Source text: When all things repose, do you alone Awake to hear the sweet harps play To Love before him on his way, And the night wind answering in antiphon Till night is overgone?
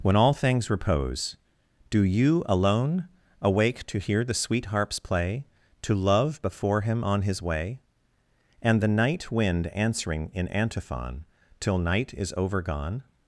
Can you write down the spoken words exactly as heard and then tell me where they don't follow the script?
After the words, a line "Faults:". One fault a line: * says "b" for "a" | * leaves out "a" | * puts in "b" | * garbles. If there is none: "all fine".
When all things repose, do you alone Awake to hear the sweet harps play To Love before him on his way, And the night wind answering in antiphon Till night is overgone?
Faults:
all fine